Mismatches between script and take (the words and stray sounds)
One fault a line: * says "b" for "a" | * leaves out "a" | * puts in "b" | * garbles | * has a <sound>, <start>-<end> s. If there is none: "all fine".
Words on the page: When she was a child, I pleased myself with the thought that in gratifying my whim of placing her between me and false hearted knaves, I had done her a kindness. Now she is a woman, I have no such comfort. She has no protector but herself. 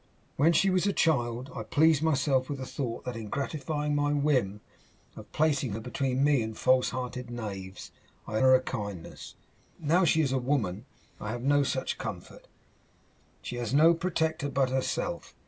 * leaves out "had done"